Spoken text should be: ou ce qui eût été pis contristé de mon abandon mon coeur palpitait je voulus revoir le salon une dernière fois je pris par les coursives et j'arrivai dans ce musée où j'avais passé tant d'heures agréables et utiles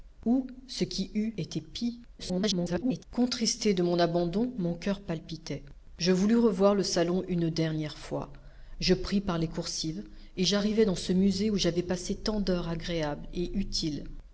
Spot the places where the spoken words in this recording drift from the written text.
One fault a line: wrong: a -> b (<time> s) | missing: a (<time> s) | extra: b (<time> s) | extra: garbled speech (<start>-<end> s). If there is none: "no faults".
extra: garbled speech (2.2-3.0 s)